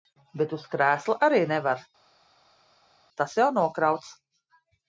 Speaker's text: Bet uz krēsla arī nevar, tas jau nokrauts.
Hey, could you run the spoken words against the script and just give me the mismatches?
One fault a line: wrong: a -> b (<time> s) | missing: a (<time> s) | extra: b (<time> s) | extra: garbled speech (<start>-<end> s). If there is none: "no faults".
no faults